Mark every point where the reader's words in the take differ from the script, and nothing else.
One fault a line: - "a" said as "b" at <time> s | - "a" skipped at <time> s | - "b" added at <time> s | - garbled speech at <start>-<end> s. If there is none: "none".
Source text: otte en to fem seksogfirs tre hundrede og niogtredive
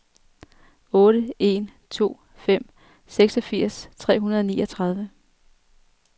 none